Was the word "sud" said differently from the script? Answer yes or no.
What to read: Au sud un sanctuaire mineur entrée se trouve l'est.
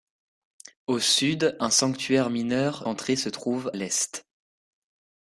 no